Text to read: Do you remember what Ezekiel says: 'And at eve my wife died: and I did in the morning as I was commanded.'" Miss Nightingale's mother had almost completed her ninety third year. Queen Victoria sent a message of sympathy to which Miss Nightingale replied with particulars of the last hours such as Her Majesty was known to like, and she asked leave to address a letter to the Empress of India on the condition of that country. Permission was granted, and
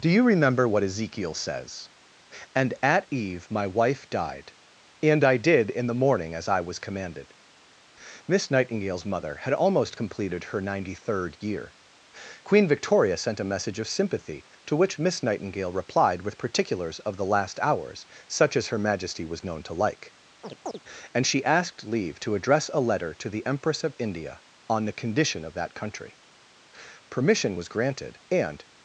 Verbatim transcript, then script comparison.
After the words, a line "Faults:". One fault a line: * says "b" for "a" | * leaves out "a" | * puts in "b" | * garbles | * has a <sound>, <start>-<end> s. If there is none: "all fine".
Do you remember what Ezekiel says: 'And at eve my wife died: and I did in the morning as I was commanded.'" Miss Nightingale's mother had almost completed her ninety third year. Queen Victoria sent a message of sympathy to which Miss Nightingale replied with particulars of the last hours such as Her Majesty was known to like, and she asked leave to address a letter to the Empress of India on the condition of that country. Permission was granted, and
Faults:
* has a chirp, 20.4-20.8 s